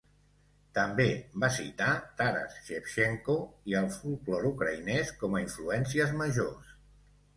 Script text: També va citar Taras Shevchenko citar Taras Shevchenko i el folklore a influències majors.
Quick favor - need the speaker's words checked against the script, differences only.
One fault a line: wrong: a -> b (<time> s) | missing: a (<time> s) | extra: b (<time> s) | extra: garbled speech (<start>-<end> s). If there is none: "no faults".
missing: citar Taras Shevchenko (3.4 s)
extra: ucraïnès com (4.5 s)